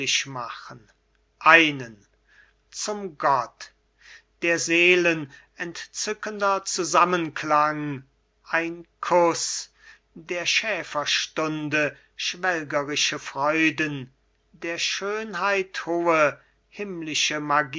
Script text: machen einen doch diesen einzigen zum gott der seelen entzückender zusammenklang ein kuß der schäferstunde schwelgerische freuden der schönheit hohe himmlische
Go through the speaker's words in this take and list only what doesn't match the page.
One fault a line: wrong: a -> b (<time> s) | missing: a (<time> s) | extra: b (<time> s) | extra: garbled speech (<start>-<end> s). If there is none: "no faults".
missing: doch diesen einzigen (2.0 s)